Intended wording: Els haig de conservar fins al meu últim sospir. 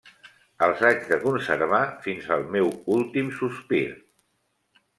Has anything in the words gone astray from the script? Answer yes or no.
no